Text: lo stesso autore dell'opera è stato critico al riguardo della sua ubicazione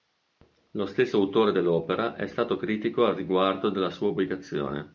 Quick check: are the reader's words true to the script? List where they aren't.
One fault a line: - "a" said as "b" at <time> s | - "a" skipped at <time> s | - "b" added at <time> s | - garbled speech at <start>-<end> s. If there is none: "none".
none